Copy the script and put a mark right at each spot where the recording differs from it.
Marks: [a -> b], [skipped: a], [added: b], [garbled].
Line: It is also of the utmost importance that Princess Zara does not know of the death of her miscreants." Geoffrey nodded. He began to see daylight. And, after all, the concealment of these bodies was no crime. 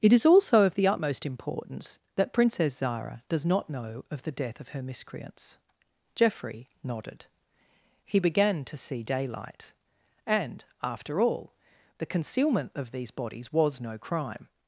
It is also of the utmost importance that Princess Zara does not know of the death of her miscreants." Geoffrey nodded. He began to see daylight. And, after all, the concealment of these bodies was no crime.